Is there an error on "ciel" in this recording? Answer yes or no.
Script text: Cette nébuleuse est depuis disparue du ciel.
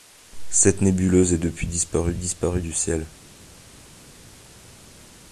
no